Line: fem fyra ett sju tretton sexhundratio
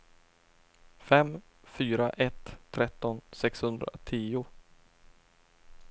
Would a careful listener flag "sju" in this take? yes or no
yes